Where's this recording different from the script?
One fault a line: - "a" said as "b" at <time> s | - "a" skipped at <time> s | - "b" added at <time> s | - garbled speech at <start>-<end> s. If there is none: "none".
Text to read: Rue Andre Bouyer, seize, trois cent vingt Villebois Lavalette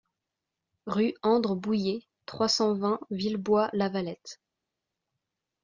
- "seize" skipped at 2.1 s